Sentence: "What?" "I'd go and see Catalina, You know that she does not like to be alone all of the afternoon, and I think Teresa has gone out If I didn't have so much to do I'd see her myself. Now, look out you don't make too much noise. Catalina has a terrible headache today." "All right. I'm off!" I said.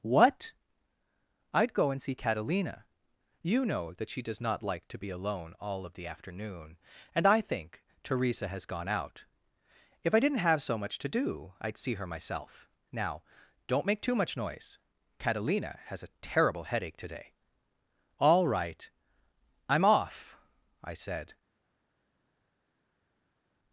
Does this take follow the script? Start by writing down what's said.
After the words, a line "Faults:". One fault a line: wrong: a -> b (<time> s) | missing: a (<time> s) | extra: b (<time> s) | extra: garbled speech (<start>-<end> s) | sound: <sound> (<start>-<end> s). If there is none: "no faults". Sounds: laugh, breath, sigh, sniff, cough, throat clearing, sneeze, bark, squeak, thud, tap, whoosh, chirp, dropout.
"What?" "I'd go and see Catalina, You know that she does not like to be alone all of the afternoon, and I think Teresa has gone out If I didn't have so much to do I'd see her myself. Now, don't make too much noise. Catalina has a terrible headache today." "All right. I'm off!" I said.
Faults:
missing: look out you (13.2 s)